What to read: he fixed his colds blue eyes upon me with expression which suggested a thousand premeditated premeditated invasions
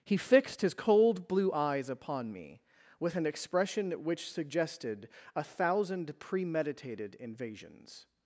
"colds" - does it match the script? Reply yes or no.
no